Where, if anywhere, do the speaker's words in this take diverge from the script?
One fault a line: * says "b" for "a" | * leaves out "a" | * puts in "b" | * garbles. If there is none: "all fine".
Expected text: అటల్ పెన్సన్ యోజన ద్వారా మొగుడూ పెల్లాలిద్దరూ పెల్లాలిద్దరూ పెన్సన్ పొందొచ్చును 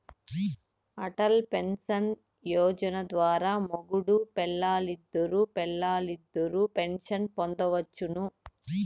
all fine